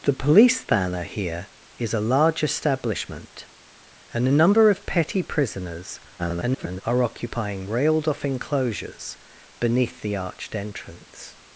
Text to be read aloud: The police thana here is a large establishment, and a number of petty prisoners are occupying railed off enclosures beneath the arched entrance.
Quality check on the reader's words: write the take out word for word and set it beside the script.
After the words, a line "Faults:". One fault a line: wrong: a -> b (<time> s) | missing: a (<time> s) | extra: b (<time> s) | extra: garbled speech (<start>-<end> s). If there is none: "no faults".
The police thana here is a large establishment, and a number of petty prisoners [garbled] are occupying railed off enclosures beneath the arched entrance.
Faults:
extra: garbled speech (6.2-6.8 s)